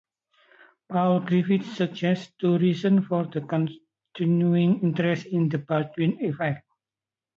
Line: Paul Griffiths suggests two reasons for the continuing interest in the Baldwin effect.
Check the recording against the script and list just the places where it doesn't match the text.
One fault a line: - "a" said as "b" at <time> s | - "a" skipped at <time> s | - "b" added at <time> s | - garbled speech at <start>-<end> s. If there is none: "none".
none